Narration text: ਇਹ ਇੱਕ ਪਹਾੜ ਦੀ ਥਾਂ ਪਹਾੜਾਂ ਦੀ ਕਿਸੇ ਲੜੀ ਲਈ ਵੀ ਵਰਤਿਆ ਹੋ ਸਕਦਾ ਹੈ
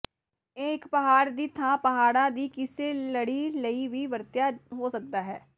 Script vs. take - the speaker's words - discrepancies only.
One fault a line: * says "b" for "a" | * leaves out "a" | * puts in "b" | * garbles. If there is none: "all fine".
all fine